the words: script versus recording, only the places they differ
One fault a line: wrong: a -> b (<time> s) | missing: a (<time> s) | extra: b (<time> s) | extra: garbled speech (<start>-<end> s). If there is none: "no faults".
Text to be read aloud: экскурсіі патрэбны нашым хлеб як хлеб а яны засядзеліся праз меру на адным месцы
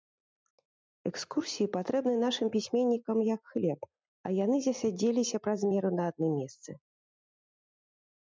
wrong: хлеб -> пісьменнікам (2.5 s)